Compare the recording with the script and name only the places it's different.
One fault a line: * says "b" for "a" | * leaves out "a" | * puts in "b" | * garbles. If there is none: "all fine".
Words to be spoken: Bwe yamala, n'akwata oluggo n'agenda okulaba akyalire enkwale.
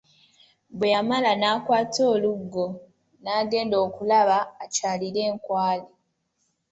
all fine